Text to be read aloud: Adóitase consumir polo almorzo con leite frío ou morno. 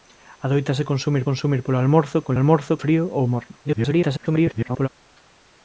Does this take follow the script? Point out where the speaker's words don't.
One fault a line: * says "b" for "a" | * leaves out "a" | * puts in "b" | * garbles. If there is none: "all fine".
* puts in "consumir"
* says "almorzo" for "leite"
* garbles